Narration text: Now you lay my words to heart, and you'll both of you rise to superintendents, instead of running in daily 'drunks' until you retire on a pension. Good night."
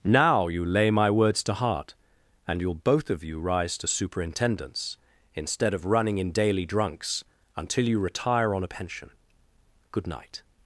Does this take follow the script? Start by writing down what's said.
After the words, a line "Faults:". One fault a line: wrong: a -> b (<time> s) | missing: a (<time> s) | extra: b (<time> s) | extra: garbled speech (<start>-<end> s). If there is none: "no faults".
Now you lay my words to heart, and you'll both of you rise to superintendents, instead of running in daily 'drunks' until you retire on a pension. Good night."
Faults:
no faults